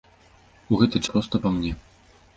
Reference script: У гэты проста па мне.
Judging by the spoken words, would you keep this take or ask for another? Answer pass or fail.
pass